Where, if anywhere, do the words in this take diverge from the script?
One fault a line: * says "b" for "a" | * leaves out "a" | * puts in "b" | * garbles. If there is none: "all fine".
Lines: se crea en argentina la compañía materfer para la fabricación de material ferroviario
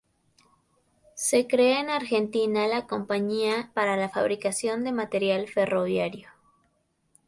* leaves out "materfer"